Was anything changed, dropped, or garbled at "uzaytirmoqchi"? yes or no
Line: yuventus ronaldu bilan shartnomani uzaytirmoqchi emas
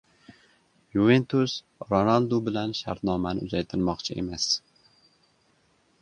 no